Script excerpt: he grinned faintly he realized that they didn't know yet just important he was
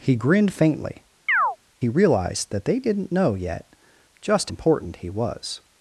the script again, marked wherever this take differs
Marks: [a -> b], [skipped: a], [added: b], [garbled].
he grinned faintly he realized that they didn't know yet just important he was